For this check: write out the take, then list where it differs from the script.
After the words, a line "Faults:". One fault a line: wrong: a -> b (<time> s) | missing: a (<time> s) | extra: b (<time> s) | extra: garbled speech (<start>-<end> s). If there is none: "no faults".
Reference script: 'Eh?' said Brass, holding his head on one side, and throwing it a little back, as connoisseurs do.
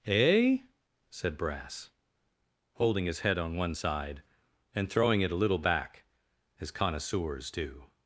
'Eh?' said Brass, holding his head on one side, and throwing it a little back, as connoisseurs do.
Faults:
no faults